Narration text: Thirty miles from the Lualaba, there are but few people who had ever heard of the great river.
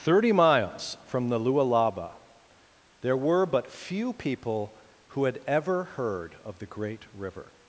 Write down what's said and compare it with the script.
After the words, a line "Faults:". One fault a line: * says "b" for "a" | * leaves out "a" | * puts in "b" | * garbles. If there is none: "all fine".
Thirty miles from the Lualaba, there were but few people who had ever heard of the great river.
Faults:
* says "were" for "are"